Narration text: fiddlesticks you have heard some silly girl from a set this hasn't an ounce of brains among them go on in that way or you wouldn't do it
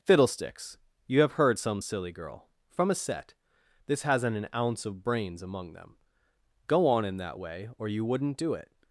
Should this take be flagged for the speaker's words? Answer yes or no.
no